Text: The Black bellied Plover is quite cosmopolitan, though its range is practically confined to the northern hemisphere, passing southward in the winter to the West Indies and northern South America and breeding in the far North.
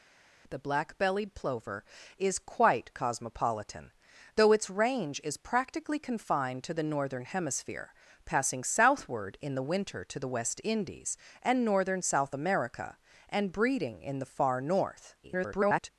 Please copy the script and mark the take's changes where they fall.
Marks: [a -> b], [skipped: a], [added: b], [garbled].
The Black bellied Plover is quite cosmopolitan, though its range is practically confined to the northern hemisphere, passing southward in the winter to the West Indies and northern South America and breeding in the far North. [garbled]